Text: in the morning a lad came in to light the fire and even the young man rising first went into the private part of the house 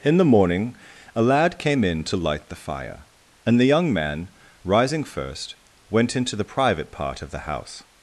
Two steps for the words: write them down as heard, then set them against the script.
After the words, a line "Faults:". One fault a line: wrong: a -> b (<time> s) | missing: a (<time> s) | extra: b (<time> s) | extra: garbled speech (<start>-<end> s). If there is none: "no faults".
in the morning a lad came in to light the fire and the young man rising first went into the private part of the house
Faults:
missing: even (3.6 s)